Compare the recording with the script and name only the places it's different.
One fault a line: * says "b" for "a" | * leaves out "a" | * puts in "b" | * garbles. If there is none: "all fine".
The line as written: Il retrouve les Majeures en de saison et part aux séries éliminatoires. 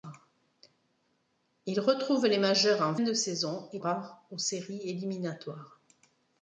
all fine